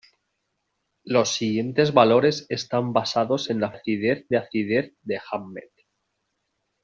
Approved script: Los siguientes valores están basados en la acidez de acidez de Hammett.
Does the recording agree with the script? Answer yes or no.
yes